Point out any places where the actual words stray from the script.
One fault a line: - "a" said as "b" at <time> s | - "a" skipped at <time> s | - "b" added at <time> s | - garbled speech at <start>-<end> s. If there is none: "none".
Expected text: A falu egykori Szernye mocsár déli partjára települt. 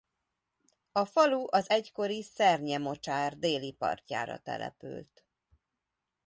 - "az" added at 1.5 s